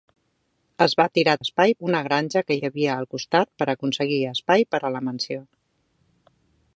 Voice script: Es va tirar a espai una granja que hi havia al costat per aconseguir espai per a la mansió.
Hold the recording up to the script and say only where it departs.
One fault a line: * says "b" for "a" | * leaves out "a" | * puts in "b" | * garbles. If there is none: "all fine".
all fine